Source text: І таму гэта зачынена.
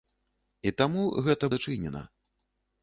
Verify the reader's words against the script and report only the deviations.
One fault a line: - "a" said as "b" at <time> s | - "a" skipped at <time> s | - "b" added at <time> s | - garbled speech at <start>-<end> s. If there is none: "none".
none